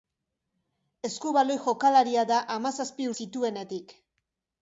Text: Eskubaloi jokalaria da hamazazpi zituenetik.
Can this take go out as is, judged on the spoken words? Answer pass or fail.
pass